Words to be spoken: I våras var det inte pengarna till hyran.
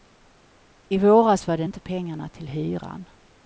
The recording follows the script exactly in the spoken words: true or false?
true